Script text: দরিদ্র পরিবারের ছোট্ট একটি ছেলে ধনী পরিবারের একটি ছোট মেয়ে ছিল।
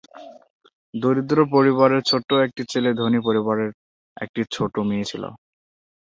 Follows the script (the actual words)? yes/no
yes